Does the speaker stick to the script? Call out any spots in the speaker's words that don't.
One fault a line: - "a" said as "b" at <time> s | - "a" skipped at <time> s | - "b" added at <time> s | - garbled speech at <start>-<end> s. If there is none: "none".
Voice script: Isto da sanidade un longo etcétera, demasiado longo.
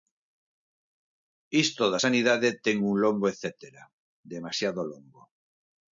- "ten" added at 2.6 s